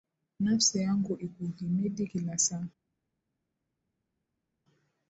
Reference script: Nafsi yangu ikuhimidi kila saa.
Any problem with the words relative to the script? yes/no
no